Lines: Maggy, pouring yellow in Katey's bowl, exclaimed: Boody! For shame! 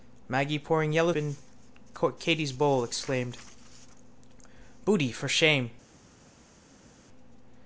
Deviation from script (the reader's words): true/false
false